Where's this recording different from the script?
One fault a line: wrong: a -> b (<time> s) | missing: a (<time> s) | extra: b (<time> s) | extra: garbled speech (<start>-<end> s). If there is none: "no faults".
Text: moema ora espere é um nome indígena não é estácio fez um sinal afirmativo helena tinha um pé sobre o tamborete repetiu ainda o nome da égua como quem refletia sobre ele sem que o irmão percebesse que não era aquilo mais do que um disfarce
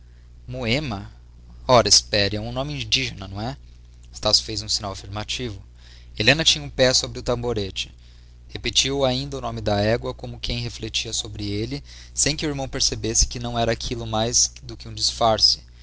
no faults